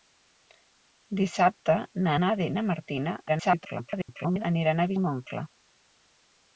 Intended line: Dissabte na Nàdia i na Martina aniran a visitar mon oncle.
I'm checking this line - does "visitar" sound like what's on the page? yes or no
no